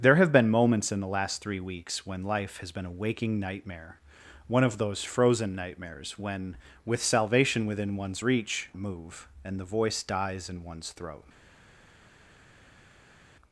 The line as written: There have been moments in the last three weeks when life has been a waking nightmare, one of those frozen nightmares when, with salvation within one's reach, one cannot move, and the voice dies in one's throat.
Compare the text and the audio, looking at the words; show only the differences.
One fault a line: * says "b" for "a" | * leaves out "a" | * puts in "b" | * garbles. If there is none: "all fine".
* leaves out "one cannot"